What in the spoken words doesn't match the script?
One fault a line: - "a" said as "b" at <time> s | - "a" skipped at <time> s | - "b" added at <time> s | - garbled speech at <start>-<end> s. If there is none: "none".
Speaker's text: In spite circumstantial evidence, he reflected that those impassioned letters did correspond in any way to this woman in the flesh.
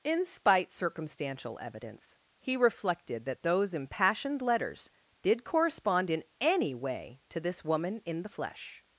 none